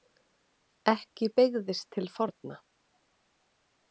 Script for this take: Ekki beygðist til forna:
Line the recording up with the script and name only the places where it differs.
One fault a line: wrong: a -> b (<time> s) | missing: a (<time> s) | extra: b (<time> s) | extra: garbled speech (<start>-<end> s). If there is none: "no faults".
no faults